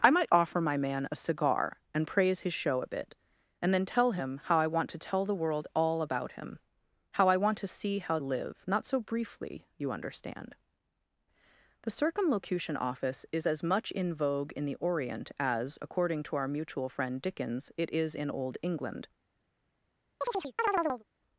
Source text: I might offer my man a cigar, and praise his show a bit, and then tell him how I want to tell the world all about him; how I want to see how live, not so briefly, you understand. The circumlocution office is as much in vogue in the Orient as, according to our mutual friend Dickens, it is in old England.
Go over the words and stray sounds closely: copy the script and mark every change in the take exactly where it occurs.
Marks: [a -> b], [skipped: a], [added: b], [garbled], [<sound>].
I might offer my man a cigar, and praise his show a bit, and then tell him how I want to tell the world all about him; how I want to see how live, not so briefly, you understand. The circumlocution office is as much in vogue in the Orient as, according to our mutual friend Dickens, it is in old England. [chirp]